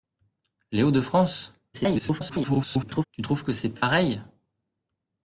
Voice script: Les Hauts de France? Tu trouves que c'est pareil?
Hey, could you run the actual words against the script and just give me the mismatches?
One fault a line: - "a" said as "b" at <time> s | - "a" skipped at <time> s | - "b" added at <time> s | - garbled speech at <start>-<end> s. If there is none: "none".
- garbled speech at 1.7-3.0 s